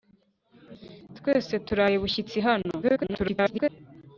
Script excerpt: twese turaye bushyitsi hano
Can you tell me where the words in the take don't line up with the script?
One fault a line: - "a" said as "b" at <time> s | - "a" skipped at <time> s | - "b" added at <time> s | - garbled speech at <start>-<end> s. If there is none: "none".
- garbled speech at 2.8-3.7 s